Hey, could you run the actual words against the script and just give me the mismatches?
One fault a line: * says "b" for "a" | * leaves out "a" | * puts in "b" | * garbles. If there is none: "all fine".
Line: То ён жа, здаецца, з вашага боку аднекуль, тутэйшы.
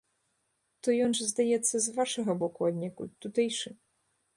all fine